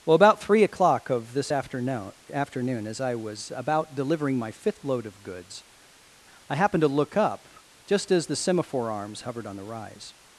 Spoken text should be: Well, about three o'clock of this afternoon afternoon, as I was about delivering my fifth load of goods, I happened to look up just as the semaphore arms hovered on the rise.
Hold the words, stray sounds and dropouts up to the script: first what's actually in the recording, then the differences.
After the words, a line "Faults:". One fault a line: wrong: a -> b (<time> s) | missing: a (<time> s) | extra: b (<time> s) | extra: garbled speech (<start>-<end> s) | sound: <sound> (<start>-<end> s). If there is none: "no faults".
Well, about three o'clock of this afternoon afternoon, as I was about delivering my fifth load of goods, I happened to look up just as the semaphore arms hovered on the rise.
Faults:
no faults